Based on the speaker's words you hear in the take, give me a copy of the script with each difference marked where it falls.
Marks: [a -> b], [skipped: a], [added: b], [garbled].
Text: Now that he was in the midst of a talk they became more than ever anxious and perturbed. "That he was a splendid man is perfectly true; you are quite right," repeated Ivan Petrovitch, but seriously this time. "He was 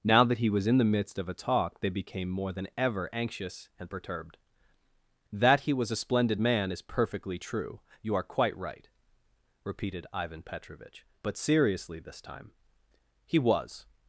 Now that he was in the midst of a talk they became more than ever anxious and perturbed. "That he was a splendid man is perfectly true; you are quite right," repeated Ivan Petrovitch, but seriously this time. "He was